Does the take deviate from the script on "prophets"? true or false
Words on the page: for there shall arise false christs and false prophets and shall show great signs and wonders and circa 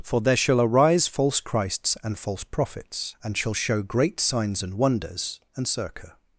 false